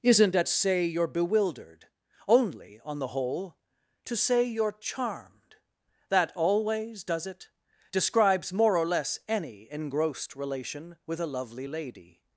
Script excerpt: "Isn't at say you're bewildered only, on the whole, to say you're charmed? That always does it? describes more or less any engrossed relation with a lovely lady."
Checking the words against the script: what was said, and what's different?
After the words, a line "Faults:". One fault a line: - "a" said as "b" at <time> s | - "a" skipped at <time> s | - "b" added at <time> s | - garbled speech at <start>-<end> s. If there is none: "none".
"Isn't at say you're bewildered only, on the whole, to say you're charmed? That always does it? describes more or less any engrossed relation with a lovely lady."
Faults:
none